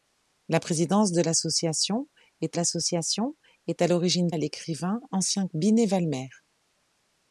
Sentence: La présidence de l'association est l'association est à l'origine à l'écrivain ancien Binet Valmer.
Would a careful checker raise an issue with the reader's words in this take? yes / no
no